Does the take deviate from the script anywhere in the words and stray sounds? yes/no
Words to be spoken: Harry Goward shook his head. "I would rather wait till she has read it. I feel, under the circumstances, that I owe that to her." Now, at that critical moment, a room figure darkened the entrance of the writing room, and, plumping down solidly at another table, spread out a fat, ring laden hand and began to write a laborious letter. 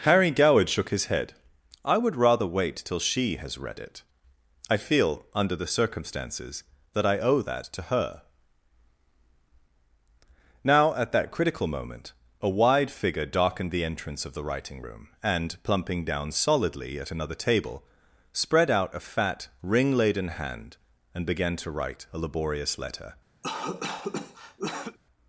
yes